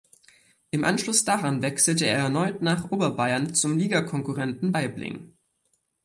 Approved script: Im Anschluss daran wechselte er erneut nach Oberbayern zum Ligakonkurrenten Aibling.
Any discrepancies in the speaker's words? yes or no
no